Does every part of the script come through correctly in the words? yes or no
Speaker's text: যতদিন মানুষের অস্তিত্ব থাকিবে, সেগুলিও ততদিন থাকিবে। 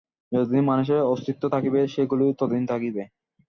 yes